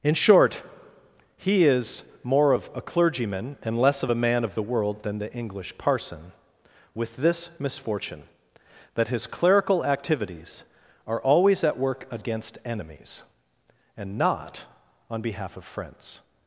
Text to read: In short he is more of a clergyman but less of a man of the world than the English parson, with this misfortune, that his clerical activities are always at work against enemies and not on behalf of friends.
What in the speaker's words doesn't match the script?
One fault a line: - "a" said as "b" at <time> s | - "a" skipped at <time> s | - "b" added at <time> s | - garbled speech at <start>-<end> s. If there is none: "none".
- "but" said as "and" at 3.6 s